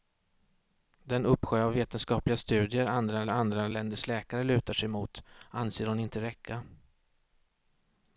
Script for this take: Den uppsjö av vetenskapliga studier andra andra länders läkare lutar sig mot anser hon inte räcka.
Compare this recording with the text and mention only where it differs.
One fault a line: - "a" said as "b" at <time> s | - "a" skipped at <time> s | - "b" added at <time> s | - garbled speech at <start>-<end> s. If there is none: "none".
none